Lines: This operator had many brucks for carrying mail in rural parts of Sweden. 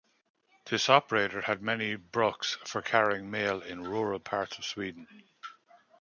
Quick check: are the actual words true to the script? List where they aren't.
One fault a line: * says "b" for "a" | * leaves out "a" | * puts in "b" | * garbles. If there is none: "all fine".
all fine